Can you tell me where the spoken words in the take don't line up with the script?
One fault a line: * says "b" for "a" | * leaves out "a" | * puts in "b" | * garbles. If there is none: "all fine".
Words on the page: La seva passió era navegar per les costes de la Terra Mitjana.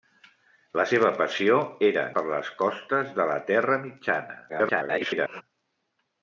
* leaves out "navegar"
* garbles